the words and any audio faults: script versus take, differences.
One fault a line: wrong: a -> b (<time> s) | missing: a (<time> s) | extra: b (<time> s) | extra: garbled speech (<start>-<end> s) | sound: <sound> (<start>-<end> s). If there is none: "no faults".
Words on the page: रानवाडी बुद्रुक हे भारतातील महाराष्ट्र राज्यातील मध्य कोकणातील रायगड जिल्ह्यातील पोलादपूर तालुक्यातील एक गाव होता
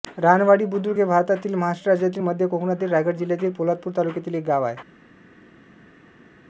wrong: होता -> आहे (4.6 s)